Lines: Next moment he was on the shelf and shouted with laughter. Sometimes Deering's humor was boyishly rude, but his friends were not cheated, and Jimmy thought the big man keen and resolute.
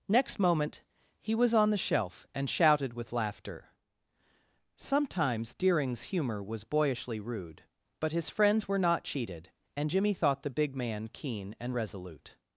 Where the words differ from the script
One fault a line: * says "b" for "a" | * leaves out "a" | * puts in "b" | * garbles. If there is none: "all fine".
all fine